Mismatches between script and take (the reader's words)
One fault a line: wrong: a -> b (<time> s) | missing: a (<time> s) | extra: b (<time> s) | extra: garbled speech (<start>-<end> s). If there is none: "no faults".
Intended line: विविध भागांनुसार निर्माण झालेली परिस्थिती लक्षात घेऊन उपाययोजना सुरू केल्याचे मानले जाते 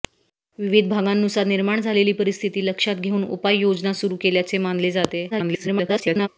extra: garbled speech (5.3-6.3 s)